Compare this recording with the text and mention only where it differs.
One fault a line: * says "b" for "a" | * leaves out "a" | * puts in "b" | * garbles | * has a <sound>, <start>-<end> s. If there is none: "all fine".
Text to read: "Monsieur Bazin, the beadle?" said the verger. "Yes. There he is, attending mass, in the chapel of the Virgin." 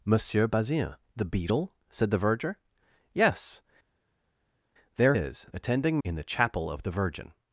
* leaves out "he"
* leaves out "mass"